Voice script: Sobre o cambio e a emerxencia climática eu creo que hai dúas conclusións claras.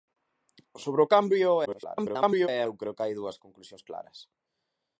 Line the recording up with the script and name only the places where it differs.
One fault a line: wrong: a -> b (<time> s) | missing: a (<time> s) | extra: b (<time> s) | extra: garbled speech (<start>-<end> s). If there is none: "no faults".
extra: garbled speech (1.6-2.5 s)
missing: emerxencia climática (2.6 s)